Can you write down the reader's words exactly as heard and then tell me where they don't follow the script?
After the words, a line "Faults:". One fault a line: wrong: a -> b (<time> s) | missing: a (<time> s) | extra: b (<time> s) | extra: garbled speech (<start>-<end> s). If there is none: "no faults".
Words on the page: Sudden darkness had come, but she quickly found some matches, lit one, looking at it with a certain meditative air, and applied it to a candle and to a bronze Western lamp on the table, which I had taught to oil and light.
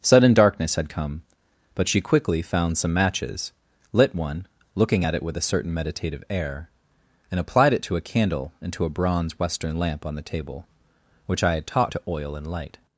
Sudden darkness had come, but she quickly found some matches, lit one, looking at it with a certain meditative air, and applied it to a candle and to a bronze Western lamp on the table, which I had taught to oil and light.
Faults:
no faults